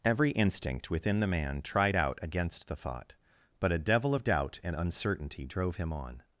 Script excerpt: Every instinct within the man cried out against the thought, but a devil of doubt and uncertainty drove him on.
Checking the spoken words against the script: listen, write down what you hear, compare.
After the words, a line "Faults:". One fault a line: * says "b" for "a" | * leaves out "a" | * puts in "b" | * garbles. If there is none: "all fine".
Every instinct within the man tried out against the thought, but a devil of doubt and uncertainty drove him on.
Faults:
* says "tried" for "cried"